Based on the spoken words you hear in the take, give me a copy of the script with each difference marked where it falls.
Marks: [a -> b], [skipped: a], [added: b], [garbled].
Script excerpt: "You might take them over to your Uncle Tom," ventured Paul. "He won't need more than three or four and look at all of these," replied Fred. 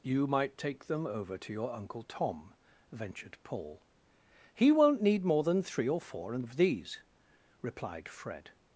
"You might take them over to your Uncle Tom," ventured Paul. "He won't need more than three or four and [skipped: look at all] of these," replied Fred.